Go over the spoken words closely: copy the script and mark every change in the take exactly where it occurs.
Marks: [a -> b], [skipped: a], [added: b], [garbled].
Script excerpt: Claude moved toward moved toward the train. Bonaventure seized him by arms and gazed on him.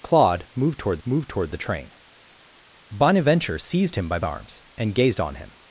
Claude moved toward moved toward the train. Bonaventure seized him by arms and gazed on him.